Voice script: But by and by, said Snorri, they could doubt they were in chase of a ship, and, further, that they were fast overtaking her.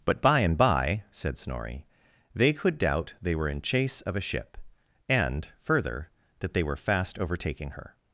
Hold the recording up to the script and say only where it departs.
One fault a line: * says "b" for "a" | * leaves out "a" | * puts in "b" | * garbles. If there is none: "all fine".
all fine